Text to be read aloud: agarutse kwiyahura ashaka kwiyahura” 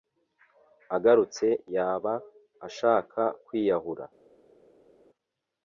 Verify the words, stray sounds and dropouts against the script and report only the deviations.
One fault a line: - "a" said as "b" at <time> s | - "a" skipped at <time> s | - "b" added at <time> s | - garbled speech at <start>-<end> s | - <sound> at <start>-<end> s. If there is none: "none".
- "kwiyahura" said as "yaba" at 1.8 s